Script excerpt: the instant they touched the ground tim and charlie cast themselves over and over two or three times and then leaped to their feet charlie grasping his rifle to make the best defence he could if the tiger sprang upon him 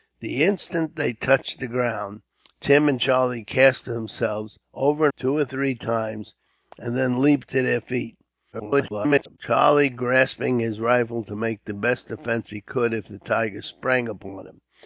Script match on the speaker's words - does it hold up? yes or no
no